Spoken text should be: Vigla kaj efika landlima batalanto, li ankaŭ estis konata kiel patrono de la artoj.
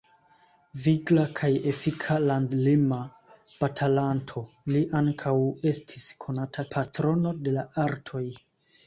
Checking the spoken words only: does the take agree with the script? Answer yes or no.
no